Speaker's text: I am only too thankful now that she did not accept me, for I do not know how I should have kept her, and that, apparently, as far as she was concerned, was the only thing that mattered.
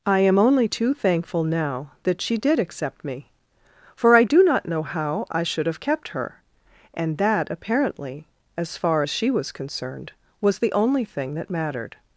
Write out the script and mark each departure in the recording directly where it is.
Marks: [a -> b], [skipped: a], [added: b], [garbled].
I am only too thankful now that she did [skipped: not] accept me, for I do not know how I should have kept her, and that, apparently, as far as she was concerned, was the only thing that mattered.